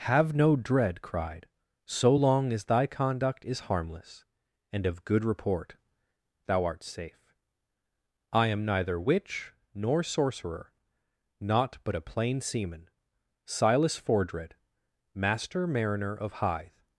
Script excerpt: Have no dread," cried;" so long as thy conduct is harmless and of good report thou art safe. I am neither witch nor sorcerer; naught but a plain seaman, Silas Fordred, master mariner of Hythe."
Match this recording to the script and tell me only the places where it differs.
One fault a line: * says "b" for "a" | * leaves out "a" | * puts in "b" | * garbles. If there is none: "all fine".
all fine